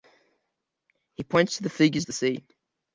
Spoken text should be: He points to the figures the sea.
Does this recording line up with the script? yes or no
yes